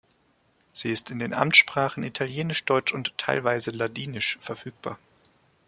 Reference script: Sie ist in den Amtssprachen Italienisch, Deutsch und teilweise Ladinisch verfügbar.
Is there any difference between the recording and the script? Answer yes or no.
no